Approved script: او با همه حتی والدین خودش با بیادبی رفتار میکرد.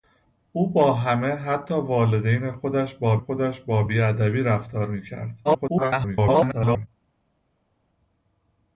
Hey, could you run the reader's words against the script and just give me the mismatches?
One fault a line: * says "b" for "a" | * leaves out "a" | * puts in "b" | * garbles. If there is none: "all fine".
* puts in "خودش با"
* garbles